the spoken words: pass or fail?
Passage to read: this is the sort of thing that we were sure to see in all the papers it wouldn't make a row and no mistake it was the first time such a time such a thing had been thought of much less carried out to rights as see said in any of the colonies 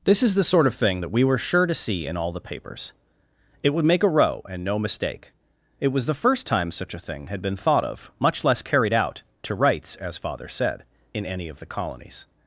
fail